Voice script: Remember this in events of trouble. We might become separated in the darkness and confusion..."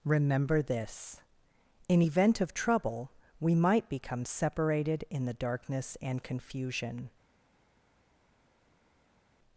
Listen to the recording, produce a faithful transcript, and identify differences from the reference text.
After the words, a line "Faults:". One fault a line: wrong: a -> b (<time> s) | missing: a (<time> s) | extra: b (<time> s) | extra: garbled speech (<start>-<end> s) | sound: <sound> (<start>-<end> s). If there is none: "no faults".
Remember this in event of trouble. We might become separated in the darkness and confusion..."
Faults:
wrong: events -> event (2.0 s)